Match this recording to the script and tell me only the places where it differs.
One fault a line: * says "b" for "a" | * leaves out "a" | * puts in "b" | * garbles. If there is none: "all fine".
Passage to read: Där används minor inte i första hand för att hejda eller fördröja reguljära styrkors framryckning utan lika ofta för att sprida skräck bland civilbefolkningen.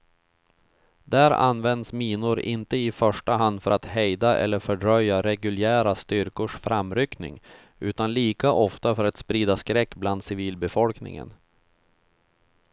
all fine